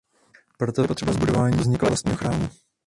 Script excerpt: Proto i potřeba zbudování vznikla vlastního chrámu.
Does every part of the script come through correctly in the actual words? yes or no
yes